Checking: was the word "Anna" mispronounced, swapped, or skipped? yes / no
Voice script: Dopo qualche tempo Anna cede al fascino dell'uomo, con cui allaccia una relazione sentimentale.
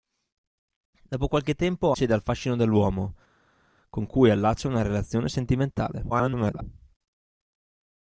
yes